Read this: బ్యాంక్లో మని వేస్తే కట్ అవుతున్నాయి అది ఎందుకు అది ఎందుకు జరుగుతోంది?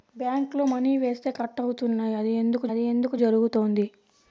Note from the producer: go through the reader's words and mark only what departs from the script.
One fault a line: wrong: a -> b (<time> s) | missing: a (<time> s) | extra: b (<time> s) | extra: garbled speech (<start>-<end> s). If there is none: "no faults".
no faults